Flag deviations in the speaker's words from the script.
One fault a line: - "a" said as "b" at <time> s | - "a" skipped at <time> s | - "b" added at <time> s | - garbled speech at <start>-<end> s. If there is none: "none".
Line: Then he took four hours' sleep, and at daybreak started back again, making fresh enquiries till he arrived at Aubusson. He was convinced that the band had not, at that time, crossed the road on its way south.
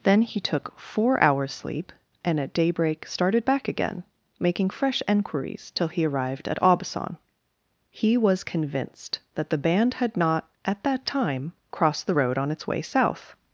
none